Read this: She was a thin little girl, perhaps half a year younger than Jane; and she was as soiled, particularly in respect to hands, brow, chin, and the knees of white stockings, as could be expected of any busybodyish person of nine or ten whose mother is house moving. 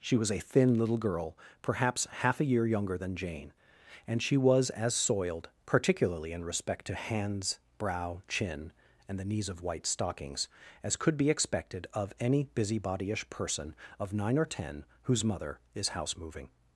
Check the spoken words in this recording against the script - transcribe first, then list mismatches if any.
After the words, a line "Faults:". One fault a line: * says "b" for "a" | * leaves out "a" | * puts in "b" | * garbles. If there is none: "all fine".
She was a thin little girl, perhaps half a year younger than Jane; and she was as soiled, particularly in respect to hands, brow, chin, and the knees of white stockings, as could be expected of any busybodyish person of nine or ten whose mother is house moving.
Faults:
all fine